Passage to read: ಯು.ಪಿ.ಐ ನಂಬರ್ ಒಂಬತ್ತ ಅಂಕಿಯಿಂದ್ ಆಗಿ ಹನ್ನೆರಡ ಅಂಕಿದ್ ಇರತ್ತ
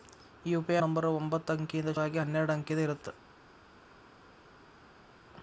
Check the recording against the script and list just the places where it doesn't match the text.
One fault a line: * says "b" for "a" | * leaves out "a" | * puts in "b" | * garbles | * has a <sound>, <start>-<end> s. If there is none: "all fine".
all fine